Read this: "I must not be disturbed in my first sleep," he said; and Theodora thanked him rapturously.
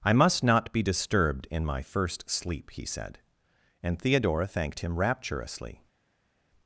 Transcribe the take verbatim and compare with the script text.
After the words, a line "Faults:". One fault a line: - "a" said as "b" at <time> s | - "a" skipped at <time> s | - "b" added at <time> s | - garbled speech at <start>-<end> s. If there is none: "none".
"I must not be disturbed in my first sleep," he said; and Theodora thanked him rapturously.
Faults:
none